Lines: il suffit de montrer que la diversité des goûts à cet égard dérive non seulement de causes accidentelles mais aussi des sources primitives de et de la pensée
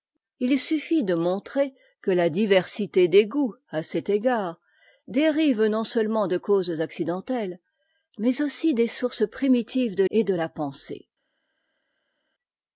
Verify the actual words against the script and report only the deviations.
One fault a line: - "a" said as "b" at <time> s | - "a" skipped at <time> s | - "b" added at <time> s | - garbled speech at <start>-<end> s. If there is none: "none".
none